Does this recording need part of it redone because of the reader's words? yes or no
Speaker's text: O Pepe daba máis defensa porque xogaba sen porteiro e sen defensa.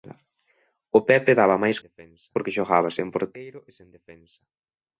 no